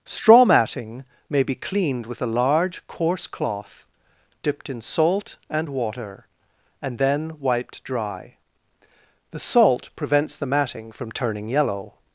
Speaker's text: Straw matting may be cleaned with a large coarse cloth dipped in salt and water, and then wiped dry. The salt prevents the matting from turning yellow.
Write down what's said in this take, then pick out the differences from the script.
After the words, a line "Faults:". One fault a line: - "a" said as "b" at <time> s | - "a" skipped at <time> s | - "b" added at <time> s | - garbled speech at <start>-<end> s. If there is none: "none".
Straw matting may be cleaned with a large coarse cloth dipped in salt and water, and then wiped dry. The salt prevents the matting from turning yellow.
Faults:
none